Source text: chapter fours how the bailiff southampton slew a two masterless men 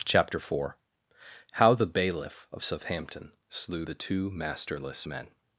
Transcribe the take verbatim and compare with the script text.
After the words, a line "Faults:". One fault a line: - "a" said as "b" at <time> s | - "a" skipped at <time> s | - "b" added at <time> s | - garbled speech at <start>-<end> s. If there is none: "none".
chapter four how the bailiff of southampton slew the two masterless men
Faults:
- "fours" said as "four" at 0.4 s
- "of" added at 2.5 s
- "a" said as "the" at 3.8 s